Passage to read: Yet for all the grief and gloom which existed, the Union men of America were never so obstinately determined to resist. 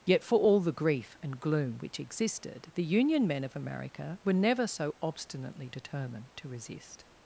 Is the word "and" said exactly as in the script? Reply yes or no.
yes